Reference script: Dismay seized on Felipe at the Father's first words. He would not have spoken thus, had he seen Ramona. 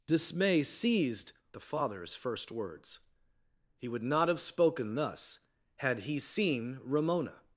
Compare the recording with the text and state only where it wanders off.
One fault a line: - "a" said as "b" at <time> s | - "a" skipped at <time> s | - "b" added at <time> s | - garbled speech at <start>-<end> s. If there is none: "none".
- "on Felipe at" skipped at 1.3 s